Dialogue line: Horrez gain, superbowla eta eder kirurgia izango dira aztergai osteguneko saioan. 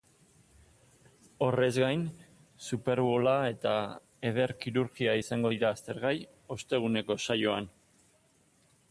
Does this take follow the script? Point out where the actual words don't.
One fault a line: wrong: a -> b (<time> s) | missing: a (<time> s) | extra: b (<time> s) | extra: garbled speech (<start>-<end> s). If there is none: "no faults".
no faults